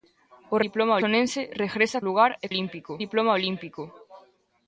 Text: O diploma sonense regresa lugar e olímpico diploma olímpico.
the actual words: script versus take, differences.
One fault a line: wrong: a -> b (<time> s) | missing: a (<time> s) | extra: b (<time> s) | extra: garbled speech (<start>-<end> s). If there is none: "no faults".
no faults